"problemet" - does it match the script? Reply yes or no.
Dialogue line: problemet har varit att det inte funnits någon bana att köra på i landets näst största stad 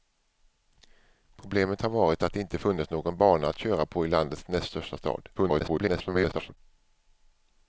yes